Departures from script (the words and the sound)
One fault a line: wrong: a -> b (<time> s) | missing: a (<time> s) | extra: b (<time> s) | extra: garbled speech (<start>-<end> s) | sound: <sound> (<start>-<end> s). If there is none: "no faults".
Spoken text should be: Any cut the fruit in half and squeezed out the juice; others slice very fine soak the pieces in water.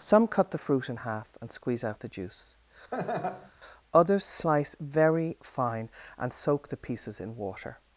wrong: Any -> Some (0.0 s)
wrong: squeezed -> squeeze (1.5 s)
sound: laugh (2.9-3.5 s)
extra: and (6.2 s)